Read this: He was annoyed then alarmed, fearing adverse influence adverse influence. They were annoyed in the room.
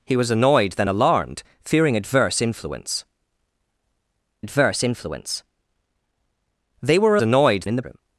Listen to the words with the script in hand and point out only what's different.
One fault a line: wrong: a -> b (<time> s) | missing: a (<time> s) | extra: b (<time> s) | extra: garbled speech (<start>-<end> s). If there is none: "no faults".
no faults